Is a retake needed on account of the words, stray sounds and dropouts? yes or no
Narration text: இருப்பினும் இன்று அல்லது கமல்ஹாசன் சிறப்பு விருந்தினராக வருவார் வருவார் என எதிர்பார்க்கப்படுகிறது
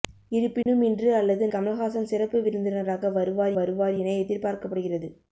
yes